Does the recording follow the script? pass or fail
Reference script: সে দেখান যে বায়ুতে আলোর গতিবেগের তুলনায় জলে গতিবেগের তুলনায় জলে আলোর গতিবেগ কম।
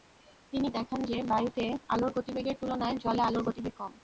fail